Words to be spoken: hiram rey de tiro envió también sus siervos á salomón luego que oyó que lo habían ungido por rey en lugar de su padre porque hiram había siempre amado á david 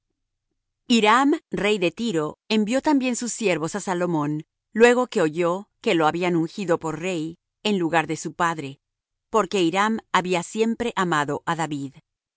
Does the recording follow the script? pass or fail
pass